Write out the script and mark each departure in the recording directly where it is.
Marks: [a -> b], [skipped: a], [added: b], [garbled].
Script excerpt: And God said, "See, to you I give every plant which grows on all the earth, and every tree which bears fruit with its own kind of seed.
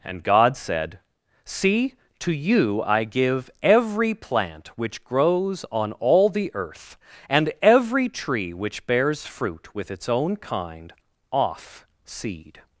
And God said, "See, to you I give every plant which grows on all the earth, and every tree which bears fruit with its own kind [of -> off] seed.